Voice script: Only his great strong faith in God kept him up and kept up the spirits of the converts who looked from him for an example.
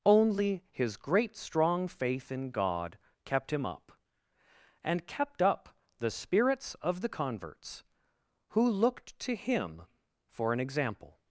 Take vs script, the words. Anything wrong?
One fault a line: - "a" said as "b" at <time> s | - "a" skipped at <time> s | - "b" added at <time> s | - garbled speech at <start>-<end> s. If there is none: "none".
- "from" said as "to" at 9.2 s